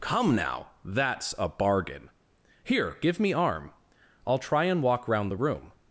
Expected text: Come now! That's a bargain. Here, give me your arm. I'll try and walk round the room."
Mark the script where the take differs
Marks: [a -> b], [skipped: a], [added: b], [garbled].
Come now! That's a bargain. Here, give me [skipped: your] arm. I'll try and walk round the room."